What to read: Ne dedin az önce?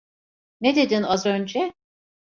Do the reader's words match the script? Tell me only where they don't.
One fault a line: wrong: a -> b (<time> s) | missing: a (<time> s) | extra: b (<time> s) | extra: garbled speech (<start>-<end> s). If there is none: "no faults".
no faults